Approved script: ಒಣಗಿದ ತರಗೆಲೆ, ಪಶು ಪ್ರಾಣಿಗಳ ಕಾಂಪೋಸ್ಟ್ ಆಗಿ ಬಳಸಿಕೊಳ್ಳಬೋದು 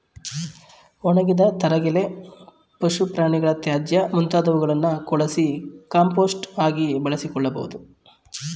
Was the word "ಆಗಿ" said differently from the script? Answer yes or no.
no